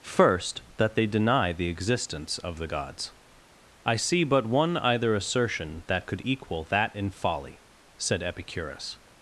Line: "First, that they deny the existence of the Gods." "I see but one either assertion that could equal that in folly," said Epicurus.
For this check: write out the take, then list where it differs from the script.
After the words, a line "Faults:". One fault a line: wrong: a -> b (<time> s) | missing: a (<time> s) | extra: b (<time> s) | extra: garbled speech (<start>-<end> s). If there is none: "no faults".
"First, that they deny the existence of the Gods." "I see but one either assertion that could equal that in folly," said Epicurus.
Faults:
no faults